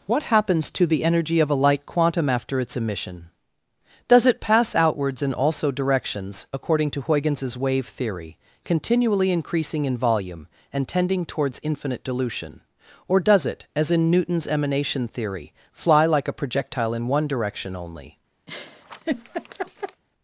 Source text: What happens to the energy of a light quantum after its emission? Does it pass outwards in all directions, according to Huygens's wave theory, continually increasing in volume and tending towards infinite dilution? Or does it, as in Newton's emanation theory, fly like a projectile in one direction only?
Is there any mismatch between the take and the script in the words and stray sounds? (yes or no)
yes